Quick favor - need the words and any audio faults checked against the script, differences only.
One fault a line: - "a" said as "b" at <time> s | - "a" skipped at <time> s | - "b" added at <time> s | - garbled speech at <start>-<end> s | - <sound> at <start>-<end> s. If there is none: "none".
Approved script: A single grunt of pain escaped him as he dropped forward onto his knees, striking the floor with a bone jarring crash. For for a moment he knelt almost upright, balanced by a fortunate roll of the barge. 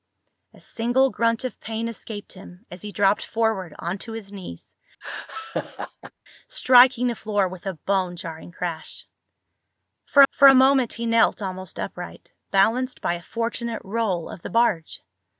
- laugh at 5.0-6.1 s